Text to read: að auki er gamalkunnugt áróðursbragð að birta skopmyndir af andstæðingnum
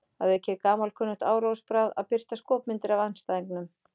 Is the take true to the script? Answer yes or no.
yes